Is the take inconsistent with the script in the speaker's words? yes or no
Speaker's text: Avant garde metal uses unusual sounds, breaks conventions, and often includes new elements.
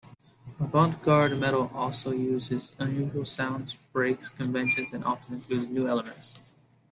yes